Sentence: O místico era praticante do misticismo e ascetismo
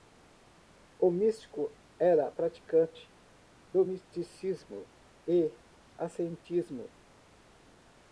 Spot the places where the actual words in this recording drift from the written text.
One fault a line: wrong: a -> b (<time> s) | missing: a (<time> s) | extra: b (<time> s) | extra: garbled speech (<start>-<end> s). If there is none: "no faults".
no faults